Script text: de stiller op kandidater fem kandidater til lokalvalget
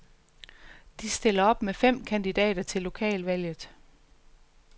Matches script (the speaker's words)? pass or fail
fail